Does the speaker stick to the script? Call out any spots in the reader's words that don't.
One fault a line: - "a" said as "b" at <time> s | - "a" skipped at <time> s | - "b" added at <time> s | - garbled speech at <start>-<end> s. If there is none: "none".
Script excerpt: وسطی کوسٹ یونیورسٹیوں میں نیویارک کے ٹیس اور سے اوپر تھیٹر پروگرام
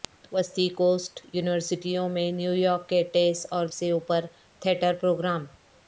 none